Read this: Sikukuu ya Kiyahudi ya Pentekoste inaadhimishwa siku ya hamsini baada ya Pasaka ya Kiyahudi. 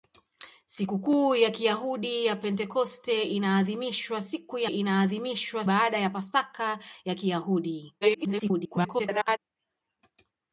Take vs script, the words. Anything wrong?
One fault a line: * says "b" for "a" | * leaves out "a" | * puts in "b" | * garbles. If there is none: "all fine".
* says "inaadhimishwa" for "hamsini"
* garbles